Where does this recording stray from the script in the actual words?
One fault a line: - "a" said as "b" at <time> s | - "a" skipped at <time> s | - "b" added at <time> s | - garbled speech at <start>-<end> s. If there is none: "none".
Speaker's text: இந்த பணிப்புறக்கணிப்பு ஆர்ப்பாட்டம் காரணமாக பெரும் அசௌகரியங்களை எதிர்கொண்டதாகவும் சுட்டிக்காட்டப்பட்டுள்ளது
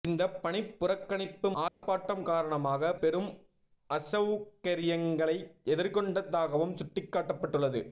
none